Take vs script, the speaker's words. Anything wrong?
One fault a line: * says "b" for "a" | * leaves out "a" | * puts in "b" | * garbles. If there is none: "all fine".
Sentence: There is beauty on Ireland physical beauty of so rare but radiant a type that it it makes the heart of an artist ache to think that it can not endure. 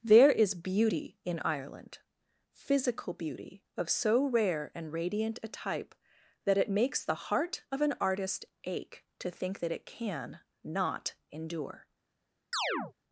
* says "in" for "on"
* says "and" for "but"
* leaves out "it"